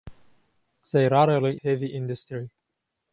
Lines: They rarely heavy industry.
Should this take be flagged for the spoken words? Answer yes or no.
no